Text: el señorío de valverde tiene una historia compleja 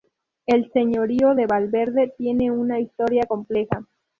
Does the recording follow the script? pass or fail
pass